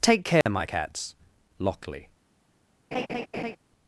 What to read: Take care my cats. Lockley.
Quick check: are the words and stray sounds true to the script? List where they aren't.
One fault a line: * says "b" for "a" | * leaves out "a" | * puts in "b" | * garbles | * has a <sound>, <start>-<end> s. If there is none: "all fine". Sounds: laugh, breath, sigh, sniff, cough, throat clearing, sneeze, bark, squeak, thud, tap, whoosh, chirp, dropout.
* has a dropout, 0.4-0.5 s
* has a laugh, 2.9-3.6 s